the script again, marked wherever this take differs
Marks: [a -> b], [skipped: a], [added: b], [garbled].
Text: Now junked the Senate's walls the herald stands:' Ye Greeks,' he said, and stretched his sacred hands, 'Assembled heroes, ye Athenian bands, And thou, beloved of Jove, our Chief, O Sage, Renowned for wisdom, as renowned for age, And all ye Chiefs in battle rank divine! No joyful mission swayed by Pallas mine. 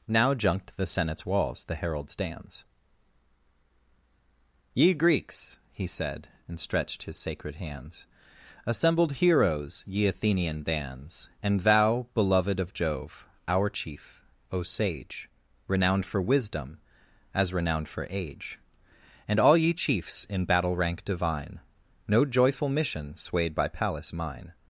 Now junked the Senate's walls the herald stands:' Ye Greeks,' he said, and stretched his sacred hands, 'Assembled heroes, ye Athenian bands, And thou, beloved of Jove, our Chief, O Sage, Renowned for wisdom, as renowned for age, And all ye Chiefs in battle rank divine! No joyful mission swayed by Pallas mine.